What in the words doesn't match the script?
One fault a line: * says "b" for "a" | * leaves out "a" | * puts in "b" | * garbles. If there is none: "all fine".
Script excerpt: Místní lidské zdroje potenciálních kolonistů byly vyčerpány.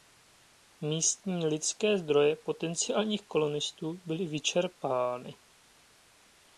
all fine